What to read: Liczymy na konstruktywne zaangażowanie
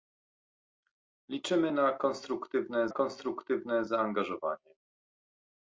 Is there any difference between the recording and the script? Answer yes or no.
yes